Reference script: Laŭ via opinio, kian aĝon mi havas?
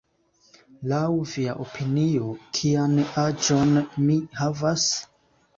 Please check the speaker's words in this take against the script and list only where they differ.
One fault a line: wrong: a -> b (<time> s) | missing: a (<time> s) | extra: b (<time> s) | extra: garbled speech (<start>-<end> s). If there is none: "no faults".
no faults